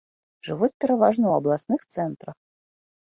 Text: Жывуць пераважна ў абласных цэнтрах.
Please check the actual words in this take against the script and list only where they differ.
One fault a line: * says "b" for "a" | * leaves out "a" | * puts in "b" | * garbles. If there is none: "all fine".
all fine